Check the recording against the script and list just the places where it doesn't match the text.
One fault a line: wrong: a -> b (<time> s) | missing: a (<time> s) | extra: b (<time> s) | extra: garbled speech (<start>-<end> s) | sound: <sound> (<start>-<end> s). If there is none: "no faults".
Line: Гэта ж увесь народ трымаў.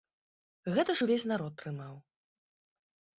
no faults